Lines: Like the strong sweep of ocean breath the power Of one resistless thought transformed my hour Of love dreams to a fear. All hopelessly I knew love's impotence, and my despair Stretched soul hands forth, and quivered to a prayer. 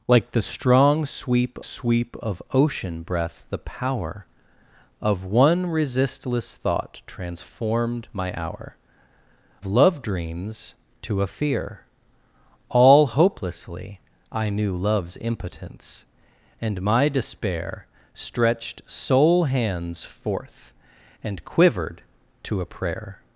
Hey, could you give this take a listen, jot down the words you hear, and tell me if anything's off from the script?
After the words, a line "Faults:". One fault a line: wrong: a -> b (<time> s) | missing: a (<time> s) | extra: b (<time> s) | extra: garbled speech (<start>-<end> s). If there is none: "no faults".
Like the strong sweep sweep of ocean breath the power Of one resistless thought transformed my hour Love dreams to a fear. All hopelessly I knew love's impotence, and my despair Stretched soul hands forth, and quivered to a prayer.
Faults:
extra: sweep (1.6 s)
missing: Of (8.8 s)